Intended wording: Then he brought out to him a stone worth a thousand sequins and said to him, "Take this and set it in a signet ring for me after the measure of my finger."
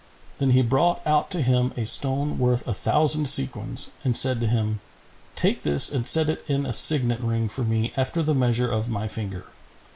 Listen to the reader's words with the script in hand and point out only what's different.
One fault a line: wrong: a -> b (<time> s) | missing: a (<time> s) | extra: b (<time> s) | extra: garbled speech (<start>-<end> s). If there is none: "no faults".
no faults